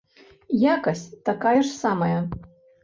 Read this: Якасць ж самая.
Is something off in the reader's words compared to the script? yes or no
yes